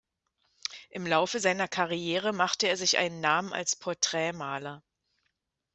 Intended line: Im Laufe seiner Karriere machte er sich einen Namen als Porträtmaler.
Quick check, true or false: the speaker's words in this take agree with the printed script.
true